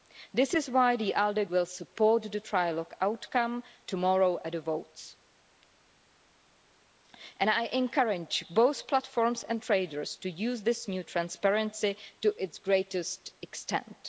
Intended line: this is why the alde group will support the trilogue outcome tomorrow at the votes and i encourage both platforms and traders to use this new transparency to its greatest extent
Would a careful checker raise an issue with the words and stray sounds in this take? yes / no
yes